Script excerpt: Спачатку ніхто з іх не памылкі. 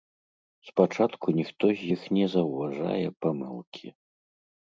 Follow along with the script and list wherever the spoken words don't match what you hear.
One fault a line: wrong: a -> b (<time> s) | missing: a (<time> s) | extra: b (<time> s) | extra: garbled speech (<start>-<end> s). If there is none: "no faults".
extra: заўважае (2.3 s)